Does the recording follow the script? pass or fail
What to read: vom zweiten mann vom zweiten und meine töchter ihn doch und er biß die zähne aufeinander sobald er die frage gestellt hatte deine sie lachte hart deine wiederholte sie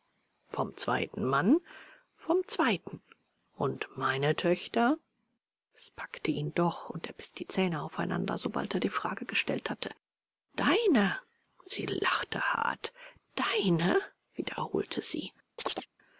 fail